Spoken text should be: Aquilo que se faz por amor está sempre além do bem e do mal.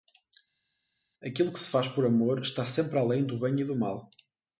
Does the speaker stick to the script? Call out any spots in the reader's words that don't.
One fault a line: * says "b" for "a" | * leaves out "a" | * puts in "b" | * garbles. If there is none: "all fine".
all fine